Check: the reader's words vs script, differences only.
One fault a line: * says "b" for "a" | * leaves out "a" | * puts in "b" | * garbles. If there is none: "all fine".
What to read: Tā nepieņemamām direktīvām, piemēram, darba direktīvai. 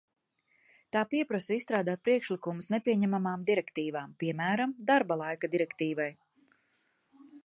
* puts in "pieprasa izstrādāt priekšlikumus"
* puts in "laika"